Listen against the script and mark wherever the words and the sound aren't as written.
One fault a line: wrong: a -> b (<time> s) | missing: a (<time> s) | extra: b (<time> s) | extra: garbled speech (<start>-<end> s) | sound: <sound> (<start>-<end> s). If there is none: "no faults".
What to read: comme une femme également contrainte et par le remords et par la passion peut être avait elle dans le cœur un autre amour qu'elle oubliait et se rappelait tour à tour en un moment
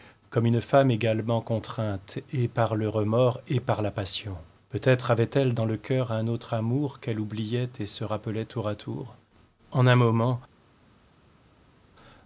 no faults